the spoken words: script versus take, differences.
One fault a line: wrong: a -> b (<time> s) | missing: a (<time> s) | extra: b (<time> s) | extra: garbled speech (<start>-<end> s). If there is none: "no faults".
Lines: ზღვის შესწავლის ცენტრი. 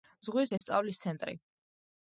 no faults